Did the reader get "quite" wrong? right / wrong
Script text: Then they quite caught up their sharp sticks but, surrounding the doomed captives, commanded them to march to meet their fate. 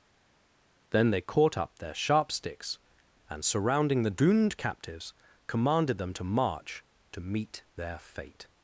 wrong